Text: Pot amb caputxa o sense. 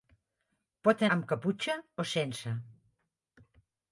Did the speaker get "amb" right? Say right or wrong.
right